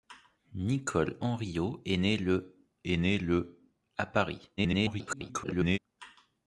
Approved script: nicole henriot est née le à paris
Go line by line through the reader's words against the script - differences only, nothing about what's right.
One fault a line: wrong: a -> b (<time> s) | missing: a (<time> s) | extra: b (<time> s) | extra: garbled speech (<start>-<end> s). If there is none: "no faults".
extra: est née le (2.8 s)
extra: garbled speech (4.6-5.8 s)